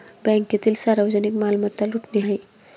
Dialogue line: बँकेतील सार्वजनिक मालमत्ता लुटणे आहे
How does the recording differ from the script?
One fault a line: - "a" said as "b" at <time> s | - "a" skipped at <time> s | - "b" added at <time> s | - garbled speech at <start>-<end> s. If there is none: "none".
none